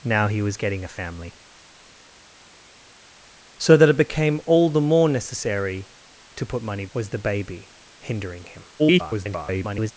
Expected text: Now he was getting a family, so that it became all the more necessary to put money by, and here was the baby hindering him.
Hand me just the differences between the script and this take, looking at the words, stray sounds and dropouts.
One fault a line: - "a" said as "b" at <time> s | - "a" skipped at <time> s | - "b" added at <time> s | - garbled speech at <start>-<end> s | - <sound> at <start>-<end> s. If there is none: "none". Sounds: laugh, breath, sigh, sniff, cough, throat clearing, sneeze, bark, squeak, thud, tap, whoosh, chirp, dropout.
- "by and here" skipped at 6.9 s
- garbled speech at 8.8-9.9 s